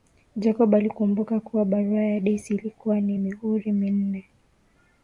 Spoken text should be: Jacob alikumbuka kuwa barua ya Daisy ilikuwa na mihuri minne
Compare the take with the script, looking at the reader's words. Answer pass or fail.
pass